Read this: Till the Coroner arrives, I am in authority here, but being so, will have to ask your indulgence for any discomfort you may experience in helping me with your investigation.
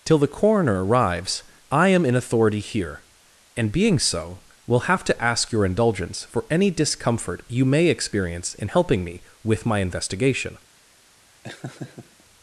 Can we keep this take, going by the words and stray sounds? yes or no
no